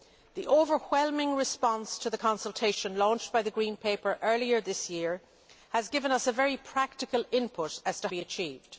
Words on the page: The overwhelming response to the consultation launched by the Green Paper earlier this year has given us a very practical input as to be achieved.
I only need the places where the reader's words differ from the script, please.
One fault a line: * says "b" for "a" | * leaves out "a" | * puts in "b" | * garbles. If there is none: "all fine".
all fine